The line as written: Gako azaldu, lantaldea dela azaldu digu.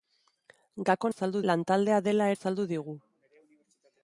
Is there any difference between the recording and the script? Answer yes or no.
no